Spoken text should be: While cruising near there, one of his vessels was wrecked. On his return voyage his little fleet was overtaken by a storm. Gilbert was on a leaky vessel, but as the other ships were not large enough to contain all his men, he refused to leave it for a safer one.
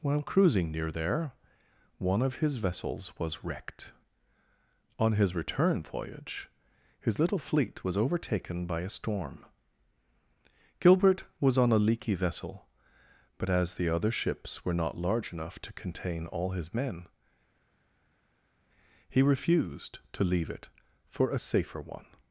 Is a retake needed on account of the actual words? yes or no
no